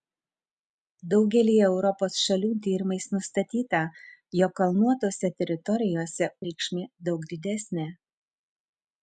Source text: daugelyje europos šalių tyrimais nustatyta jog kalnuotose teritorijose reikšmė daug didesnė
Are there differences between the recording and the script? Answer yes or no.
no